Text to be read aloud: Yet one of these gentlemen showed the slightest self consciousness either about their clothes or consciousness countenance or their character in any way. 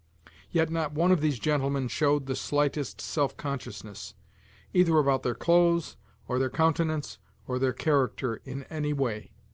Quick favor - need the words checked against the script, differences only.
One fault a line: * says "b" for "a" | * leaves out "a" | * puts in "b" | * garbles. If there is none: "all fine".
* puts in "not"
* says "their" for "consciousness"